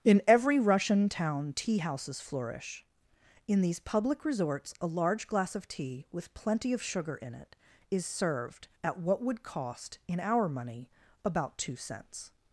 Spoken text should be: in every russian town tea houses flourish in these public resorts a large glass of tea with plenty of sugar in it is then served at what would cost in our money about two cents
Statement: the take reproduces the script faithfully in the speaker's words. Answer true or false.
false